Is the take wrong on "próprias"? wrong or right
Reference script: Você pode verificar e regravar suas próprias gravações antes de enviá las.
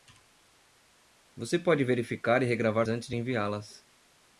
wrong